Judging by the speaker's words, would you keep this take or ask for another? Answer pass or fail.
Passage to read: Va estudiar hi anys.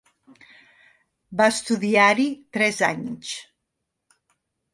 fail